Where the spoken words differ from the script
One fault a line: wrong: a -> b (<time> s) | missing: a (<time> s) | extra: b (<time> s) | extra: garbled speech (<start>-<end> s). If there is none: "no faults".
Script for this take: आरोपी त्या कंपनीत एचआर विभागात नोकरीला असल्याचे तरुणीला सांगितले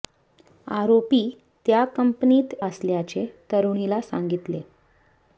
missing: एचआर विभागात नोकरीला (2.5 s)